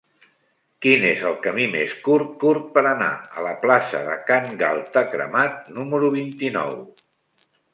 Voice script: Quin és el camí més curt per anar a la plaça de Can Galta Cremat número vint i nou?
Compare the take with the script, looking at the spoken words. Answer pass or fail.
fail